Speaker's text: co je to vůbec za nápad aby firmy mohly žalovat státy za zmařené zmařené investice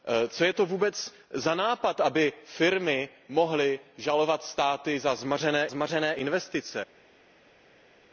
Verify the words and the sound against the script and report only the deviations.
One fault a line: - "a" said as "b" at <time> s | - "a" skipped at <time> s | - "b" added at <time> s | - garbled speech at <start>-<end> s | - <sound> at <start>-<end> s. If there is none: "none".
none